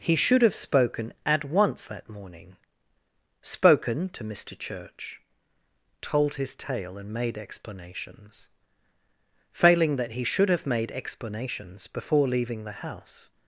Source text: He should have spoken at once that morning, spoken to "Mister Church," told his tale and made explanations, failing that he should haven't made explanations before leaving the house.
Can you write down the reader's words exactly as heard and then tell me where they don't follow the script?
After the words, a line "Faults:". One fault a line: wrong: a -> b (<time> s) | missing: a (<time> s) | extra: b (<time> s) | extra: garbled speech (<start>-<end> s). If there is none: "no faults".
He should have spoken at once that morning, spoken to "Mister Church," told his tale and made explanations, failing that he should have made explanations before leaving the house.
Faults:
wrong: haven't -> have (10.5 s)